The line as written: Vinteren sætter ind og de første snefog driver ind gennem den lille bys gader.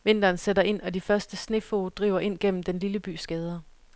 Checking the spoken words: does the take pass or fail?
pass